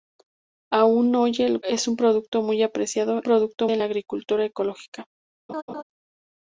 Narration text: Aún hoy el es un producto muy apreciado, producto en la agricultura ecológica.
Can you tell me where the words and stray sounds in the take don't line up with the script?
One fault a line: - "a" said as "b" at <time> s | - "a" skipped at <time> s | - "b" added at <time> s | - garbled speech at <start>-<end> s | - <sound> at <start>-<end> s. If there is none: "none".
- laugh at 5.5-5.8 s